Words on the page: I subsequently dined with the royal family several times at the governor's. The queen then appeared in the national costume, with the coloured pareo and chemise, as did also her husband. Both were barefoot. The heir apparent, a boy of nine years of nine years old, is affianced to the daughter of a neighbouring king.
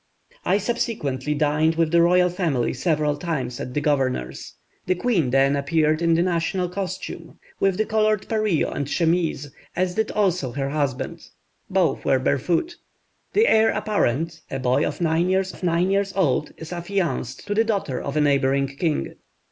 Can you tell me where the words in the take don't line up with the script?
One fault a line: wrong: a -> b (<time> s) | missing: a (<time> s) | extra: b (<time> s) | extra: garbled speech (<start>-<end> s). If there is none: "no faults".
no faults